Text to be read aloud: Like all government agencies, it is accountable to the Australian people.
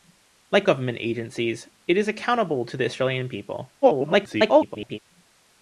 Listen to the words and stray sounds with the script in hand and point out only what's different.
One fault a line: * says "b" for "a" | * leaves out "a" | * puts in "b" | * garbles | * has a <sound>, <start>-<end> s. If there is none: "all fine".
* leaves out "all"
* garbles